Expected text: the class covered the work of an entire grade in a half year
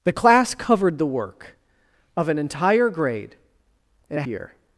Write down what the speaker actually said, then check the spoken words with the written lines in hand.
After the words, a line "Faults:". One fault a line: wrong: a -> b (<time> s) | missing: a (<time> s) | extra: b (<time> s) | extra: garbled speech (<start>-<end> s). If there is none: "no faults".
the class covered the work of an entire grade in a year
Faults:
missing: half (4.2 s)